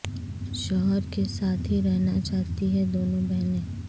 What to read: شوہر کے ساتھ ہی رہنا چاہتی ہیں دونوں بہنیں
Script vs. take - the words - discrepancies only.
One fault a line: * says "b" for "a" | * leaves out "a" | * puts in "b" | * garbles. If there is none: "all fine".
all fine